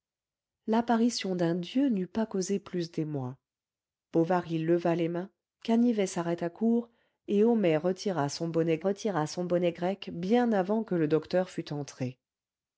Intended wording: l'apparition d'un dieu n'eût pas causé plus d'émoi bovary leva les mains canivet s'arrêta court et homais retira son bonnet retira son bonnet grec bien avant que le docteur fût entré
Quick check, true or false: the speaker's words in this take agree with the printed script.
true